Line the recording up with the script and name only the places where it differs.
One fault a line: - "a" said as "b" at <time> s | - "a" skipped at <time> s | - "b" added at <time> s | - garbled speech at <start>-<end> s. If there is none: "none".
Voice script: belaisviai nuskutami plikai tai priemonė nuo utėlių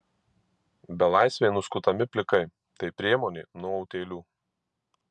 none